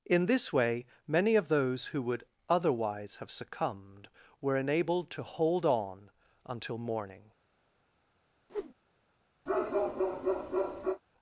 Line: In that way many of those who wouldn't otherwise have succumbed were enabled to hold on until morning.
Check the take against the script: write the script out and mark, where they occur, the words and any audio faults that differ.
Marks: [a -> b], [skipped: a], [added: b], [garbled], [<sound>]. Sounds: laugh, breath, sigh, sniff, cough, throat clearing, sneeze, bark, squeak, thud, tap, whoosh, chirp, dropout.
In [that -> this] way many of those who [wouldn't -> would] otherwise have succumbed were enabled to hold on until morning. [whoosh] [bark]